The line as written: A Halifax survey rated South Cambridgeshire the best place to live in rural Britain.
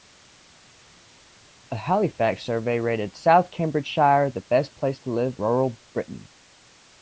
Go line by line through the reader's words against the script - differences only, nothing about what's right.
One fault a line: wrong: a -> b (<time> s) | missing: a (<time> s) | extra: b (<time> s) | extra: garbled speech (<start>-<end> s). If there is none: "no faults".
missing: in (5.3 s)